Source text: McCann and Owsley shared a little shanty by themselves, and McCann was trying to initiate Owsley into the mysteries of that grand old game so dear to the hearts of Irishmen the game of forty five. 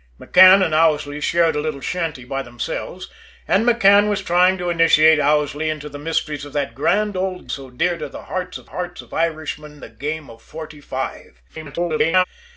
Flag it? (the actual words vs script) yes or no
yes